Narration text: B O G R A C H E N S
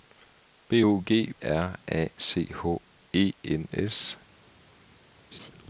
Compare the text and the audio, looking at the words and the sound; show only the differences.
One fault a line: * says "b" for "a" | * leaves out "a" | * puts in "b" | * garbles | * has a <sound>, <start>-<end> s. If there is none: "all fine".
* has a laugh, 5.3-5.5 s